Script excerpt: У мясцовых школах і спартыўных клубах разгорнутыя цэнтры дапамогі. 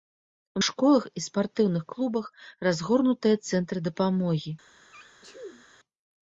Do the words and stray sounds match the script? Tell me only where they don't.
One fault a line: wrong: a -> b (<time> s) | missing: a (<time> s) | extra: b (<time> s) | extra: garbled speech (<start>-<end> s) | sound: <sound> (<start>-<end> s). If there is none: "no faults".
missing: мясцовых (0.6 s)
sound: sneeze (4.9-5.7 s)